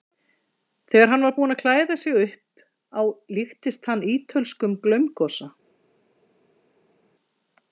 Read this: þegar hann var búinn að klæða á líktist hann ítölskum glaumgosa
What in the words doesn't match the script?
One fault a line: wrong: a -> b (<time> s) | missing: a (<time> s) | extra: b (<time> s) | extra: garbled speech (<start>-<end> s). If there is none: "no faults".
extra: sig upp (2.0 s)